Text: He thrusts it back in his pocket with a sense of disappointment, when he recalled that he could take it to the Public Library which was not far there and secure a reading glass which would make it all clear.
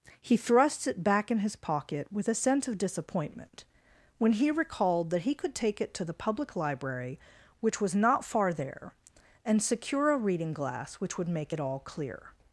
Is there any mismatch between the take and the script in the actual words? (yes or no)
no